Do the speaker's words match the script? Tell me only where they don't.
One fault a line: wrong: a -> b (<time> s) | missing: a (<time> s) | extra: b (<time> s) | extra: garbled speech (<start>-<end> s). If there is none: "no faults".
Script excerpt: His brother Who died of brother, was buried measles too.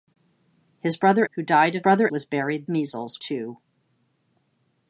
no faults